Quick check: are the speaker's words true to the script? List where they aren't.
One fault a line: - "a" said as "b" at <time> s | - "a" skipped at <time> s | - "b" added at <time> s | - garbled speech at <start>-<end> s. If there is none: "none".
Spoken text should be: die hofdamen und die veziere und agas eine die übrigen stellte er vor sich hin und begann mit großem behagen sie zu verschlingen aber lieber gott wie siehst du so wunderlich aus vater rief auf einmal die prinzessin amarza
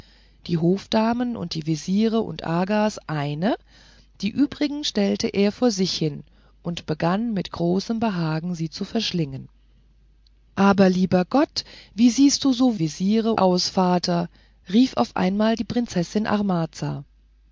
- "wunderlich" said as "veziere" at 12.8 s